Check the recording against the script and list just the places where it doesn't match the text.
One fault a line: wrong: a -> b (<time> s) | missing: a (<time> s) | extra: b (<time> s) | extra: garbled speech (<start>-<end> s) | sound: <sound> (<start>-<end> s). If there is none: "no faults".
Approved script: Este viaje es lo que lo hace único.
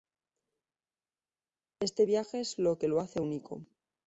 no faults